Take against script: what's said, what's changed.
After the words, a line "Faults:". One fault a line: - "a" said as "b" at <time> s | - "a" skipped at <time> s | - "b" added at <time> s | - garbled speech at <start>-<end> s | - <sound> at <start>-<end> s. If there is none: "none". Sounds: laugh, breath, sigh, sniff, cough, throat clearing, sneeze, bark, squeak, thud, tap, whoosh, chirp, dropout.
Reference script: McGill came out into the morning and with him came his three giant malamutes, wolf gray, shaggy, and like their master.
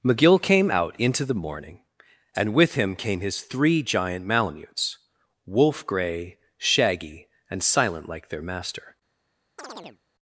McGill came out into the morning and with him came his three giant malamutes, wolf gray, shaggy, and silent like their master.
Faults:
- "silent" added at 7.6 s
- chirp at 9.6-10.0 s